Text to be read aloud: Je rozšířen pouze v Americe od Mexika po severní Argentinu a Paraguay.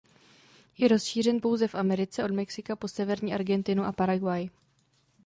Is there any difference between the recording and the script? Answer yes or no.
no